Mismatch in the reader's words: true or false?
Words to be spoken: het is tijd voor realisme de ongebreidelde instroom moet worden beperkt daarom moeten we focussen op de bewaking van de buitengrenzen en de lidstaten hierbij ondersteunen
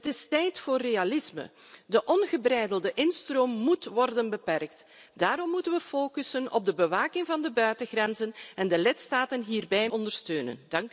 false